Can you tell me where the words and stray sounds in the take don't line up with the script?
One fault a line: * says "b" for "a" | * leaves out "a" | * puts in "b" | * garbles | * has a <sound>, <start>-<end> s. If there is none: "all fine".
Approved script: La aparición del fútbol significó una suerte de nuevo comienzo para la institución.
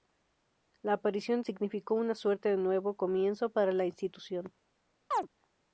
* leaves out "del fútbol"
* has a chirp, 5.1-5.3 s